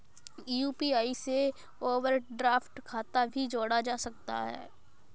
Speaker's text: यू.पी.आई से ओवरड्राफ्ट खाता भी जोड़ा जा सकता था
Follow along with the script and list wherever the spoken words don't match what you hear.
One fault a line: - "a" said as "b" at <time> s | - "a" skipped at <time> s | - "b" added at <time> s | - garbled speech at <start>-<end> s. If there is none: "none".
- "था" said as "है" at 4.4 s